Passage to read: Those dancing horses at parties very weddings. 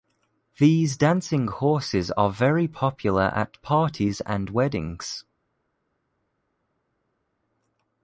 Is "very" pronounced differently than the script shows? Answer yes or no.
yes